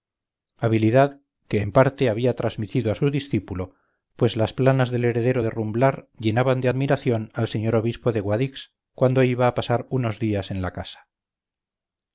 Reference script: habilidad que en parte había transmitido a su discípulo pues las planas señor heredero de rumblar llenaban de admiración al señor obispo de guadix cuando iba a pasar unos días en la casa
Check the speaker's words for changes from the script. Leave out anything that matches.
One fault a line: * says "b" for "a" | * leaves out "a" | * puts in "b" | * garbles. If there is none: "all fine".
* says "del" for "señor"